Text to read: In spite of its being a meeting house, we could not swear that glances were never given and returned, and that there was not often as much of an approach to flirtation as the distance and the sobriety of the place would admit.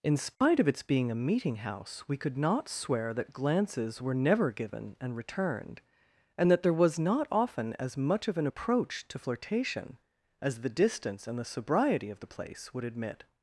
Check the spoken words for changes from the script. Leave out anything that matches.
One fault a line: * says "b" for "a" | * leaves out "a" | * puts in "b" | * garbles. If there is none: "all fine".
all fine